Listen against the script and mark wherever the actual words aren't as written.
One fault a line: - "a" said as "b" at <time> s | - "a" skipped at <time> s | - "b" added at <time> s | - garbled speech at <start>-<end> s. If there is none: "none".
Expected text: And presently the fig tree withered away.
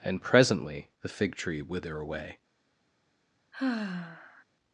- "withered" said as "wither" at 1.6 s